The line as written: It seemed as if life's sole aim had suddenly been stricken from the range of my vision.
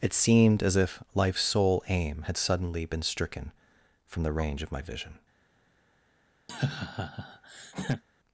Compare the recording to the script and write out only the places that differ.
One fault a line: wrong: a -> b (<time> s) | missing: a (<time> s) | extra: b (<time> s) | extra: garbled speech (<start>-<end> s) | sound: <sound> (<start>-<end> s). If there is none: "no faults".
sound: laugh (6.5-8.0 s)